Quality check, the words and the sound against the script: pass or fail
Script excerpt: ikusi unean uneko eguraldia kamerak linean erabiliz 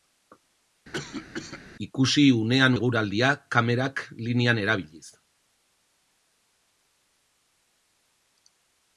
fail